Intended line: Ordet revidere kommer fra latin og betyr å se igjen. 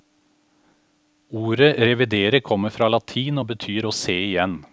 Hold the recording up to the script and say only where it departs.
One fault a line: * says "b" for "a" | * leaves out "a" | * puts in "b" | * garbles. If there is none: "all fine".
all fine